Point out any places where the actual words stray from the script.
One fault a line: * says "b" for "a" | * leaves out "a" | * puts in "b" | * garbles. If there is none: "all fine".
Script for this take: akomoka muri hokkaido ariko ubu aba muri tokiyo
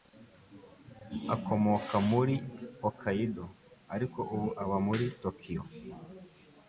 all fine